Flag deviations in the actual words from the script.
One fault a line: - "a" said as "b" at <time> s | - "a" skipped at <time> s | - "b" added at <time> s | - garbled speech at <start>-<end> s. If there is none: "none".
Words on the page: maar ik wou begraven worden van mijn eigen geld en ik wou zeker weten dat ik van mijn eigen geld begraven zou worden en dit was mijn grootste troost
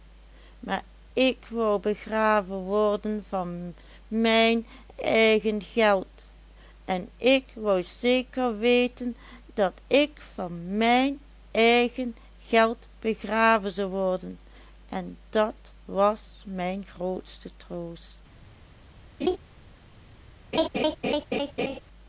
- "dit" said as "dat" at 15.3 s